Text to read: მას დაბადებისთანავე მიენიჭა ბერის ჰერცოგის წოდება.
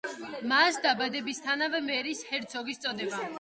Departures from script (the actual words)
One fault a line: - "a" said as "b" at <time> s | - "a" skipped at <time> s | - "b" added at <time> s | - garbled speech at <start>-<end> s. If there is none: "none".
- "მიენიჭა" skipped at 1.8 s